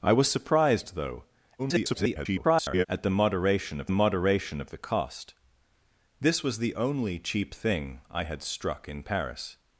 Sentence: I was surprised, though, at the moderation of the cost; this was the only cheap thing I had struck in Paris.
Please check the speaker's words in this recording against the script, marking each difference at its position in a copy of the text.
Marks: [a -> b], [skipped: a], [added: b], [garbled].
I was surprised, though, [garbled] at the moderation of [added: moderation of] the cost; this was the only cheap thing I had struck in Paris.